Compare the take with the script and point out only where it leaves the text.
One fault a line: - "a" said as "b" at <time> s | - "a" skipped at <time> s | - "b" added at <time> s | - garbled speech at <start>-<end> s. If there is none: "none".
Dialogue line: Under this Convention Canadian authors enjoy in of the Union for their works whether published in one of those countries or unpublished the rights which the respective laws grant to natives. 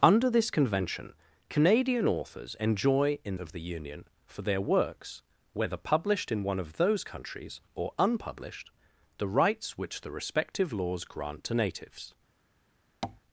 none